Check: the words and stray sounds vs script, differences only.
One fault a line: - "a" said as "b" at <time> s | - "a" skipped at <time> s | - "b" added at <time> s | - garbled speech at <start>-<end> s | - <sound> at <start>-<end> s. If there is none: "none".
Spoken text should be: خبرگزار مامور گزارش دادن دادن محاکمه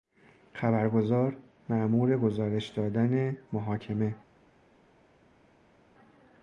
- "دادن" skipped at 3.4 s